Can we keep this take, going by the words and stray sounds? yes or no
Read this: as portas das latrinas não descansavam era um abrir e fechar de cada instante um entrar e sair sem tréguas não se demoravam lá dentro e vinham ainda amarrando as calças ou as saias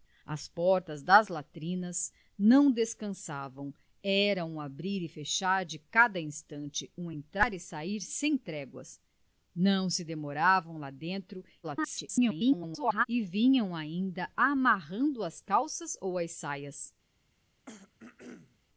no